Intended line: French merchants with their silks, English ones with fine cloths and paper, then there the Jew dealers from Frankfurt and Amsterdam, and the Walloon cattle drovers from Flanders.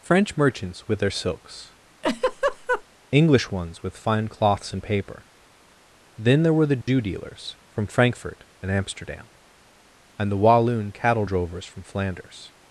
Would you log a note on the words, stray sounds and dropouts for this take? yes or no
yes